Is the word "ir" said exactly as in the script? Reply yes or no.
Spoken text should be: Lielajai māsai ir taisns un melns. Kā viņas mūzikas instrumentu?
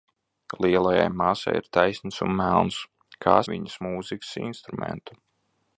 yes